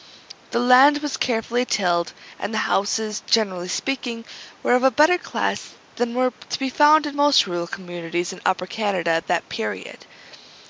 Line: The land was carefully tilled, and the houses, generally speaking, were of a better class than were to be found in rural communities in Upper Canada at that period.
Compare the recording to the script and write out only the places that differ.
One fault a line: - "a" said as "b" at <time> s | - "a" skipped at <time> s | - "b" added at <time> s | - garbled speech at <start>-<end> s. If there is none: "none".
- "most" added at 7.2 s